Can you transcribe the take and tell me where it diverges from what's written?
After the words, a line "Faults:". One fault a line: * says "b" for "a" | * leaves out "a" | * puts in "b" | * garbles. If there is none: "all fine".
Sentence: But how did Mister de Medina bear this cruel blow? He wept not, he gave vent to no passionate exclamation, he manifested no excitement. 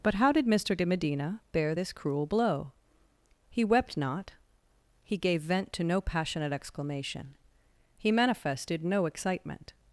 But how did Mister de Medina bear this cruel blow? He wept not, he gave vent to no passionate exclamation, he manifested no excitement.
Faults:
all fine